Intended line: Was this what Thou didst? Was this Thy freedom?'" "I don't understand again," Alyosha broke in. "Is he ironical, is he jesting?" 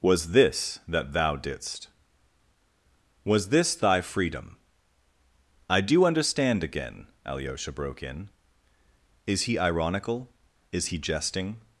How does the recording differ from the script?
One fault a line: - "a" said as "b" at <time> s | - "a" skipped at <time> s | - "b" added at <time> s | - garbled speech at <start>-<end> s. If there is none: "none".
- "what" said as "that" at 0.9 s
- "don't" said as "do" at 5.8 s